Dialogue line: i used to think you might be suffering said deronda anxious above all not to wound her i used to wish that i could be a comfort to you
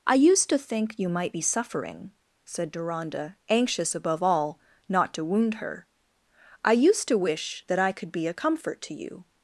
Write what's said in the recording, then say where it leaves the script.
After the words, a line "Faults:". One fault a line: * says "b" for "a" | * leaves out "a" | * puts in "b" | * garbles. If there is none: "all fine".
i used to think you might be suffering said deronda anxious above all not to wound her i used to wish that i could be a comfort to you
Faults:
all fine